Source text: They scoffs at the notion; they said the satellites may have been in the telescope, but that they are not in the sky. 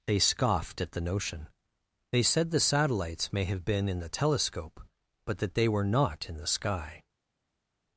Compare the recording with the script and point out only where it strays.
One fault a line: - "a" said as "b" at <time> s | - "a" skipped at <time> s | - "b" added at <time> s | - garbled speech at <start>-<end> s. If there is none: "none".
- "scoffs" said as "scoffed" at 0.2 s
- "are" said as "were" at 5.7 s